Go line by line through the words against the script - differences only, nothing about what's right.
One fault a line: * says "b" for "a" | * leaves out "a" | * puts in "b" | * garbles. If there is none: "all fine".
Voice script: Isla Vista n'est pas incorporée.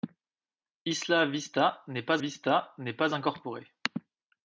* puts in "Vista n'est pas"